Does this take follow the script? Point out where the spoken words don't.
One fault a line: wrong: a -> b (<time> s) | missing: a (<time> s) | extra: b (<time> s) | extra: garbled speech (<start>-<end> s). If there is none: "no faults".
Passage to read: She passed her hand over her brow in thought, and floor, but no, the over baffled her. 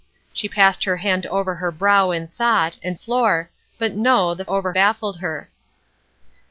no faults